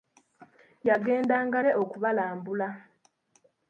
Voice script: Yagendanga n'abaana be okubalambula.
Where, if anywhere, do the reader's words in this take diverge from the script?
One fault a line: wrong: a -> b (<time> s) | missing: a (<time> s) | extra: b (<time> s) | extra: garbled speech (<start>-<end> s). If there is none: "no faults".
missing: n'abaana (1.6 s)